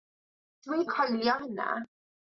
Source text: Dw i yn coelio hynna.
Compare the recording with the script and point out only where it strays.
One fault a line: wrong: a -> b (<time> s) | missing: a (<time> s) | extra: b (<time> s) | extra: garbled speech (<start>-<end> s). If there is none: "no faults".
no faults